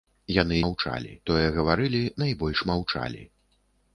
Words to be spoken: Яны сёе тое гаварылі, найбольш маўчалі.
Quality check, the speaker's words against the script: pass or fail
fail